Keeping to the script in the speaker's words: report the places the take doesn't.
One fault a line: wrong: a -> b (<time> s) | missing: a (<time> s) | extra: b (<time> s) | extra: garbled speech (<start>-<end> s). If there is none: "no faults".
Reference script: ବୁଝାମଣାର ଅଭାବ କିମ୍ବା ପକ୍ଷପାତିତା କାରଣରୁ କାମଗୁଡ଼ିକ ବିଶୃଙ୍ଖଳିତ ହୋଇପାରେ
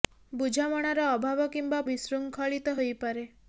missing: ପକ୍ଷପାତିତା କାରଣରୁ କାମଗୁଡ଼ିକ (1.8 s)